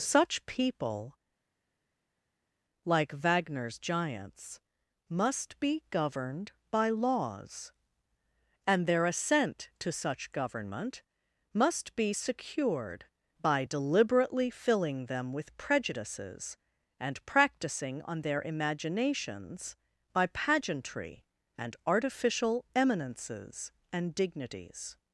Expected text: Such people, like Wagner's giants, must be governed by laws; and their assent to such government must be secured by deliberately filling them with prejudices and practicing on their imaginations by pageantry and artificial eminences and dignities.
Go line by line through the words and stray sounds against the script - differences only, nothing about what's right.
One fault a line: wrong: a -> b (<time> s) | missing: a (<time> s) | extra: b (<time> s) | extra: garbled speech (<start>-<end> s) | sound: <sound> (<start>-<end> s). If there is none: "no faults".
no faults